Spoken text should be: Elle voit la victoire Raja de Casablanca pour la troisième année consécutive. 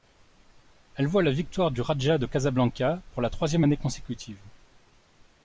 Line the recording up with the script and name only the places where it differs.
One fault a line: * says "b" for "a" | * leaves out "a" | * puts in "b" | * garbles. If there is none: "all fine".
* puts in "du"